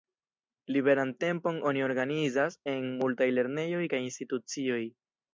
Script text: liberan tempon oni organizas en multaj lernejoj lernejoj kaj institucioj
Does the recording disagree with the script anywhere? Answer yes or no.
yes